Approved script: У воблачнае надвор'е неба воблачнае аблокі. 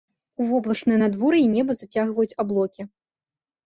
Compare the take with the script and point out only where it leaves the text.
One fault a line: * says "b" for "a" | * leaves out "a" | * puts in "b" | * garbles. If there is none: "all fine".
* says "зацягваюць" for "воблачнае"